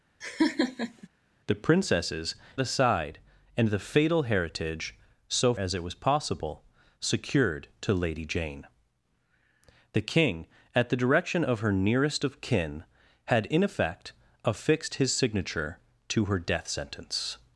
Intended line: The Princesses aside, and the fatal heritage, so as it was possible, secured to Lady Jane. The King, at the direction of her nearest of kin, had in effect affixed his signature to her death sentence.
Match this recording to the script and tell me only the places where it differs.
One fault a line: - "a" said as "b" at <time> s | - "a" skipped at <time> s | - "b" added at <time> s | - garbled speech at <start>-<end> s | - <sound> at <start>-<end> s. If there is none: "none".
- laugh at 0.2-1.1 s